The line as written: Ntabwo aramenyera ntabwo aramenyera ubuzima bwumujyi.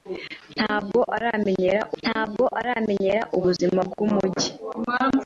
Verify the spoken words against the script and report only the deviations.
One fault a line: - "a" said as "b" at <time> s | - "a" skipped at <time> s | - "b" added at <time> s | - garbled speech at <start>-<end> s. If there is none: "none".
none